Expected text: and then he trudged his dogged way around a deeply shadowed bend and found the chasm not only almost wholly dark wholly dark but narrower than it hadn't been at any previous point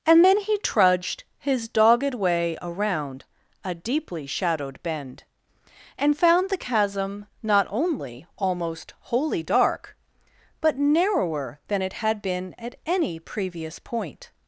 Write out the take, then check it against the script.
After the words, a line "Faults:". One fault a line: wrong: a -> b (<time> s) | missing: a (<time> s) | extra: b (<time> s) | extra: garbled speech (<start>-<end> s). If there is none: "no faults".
and then he trudged his dogged way around a deeply shadowed bend and found the chasm not only almost wholly dark but narrower than it had been at any previous point
Faults:
missing: wholly dark (10.0 s)
wrong: hadn't -> had (11.9 s)